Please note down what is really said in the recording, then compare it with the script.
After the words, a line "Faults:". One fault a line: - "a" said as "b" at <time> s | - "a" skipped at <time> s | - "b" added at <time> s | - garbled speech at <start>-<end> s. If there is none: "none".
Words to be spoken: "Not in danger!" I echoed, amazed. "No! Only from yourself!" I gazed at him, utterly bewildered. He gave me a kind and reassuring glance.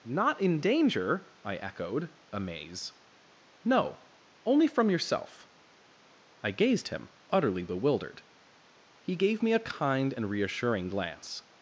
"Not in danger!" I echoed, amaze. "No! Only from yourself!" I gazed him, utterly bewildered. He gave me a kind and reassuring glance.
Faults:
- "amazed" said as "amaze" at 2.3 s
- "at" skipped at 6.9 s